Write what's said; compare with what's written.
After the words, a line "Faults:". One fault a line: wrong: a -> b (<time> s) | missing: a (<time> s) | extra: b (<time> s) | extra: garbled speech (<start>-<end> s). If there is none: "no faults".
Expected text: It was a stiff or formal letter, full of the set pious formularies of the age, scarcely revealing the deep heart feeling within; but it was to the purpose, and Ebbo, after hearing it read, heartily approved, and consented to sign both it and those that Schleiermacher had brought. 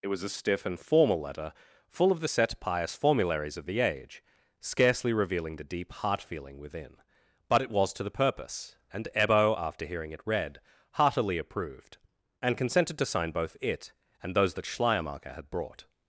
It was a stiff and formal letter, full of the set pious formularies of the age, scarcely revealing the deep heart feeling within; but it was to the purpose, and Ebbo, after hearing it read, heartily approved, and consented to sign both it and those that Schleiermacher had brought.
Faults:
wrong: or -> and (0.7 s)